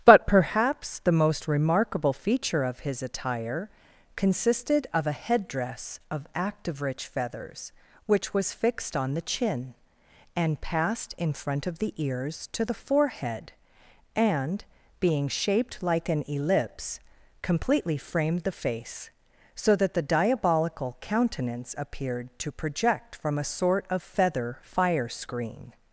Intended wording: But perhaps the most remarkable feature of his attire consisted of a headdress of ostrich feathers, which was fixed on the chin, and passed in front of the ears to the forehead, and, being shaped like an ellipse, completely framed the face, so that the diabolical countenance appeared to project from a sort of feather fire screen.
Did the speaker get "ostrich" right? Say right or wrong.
wrong